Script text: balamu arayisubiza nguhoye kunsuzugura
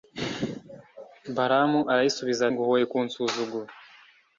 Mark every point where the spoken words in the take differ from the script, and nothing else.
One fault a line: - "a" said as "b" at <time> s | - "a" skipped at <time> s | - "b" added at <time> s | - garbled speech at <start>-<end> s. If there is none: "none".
none